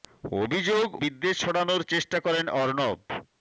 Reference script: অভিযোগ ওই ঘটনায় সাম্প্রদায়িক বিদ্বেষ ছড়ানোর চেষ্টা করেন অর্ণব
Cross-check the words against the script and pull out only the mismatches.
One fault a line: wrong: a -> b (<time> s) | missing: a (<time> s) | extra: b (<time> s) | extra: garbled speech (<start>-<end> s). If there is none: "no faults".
missing: ওই ঘটনায় সাম্প্রদায়িক (0.9 s)